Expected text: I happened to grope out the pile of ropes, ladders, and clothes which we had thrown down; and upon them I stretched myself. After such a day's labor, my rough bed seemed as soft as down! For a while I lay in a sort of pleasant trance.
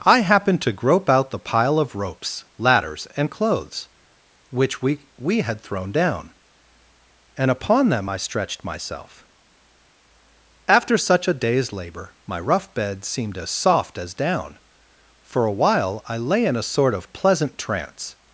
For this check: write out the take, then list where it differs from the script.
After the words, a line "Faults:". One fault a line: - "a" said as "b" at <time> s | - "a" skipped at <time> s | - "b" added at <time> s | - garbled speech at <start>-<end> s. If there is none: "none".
I happened to grope out the pile of ropes, ladders, and clothes which we we had thrown down; and upon them I stretched myself. After such a day's labor, my rough bed seemed as soft as down! For a while I lay in a sort of pleasant trance.
Faults:
- "we" added at 5.2 s